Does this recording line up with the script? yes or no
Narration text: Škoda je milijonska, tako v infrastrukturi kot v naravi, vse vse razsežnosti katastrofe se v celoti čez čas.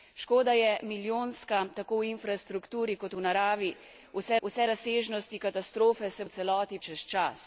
yes